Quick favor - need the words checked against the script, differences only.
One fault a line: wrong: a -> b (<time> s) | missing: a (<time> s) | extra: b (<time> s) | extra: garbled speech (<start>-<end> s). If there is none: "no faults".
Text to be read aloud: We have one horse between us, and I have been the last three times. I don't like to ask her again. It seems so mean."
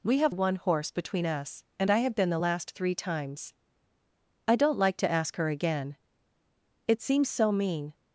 no faults